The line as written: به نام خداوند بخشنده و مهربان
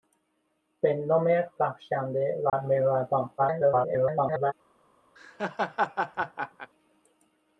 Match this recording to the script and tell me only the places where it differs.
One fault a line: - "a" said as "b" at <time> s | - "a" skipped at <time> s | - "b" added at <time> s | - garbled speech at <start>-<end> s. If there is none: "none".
- "خداوند" skipped at 1.4 s
- garbled speech at 3.4-4.5 s